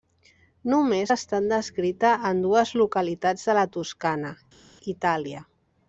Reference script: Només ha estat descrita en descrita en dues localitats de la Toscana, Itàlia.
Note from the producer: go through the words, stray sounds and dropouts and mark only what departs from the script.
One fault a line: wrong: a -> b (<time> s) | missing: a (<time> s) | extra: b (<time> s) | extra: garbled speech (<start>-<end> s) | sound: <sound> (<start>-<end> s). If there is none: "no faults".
missing: descrita en (2.4 s)